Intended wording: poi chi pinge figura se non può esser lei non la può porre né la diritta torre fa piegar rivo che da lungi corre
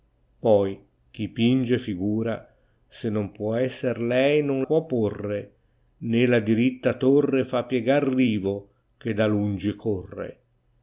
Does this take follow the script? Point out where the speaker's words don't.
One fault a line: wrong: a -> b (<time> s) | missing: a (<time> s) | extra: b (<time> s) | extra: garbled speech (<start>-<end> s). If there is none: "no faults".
missing: la (4.7 s)